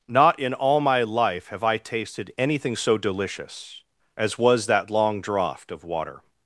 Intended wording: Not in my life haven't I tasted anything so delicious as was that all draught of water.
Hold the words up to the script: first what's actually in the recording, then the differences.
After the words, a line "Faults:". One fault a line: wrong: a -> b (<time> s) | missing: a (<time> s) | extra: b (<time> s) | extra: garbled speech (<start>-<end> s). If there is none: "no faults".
Not in all my life have I tasted anything so delicious as was that long draught of water.
Faults:
extra: all (0.5 s)
wrong: haven't -> have (1.5 s)
wrong: all -> long (4.9 s)